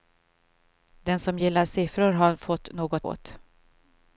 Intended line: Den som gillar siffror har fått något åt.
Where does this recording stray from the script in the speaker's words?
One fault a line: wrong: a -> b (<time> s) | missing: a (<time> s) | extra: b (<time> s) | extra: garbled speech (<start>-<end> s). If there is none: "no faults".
no faults